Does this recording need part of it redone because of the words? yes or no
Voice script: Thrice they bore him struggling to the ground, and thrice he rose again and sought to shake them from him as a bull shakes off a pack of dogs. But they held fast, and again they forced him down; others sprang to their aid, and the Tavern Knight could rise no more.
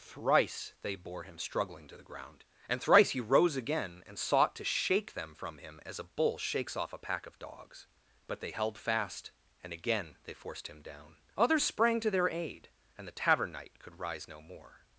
no